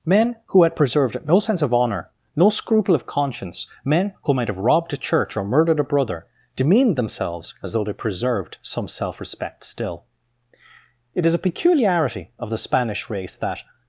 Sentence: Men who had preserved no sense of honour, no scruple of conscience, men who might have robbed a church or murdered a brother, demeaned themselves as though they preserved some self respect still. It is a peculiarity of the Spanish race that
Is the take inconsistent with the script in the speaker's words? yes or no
no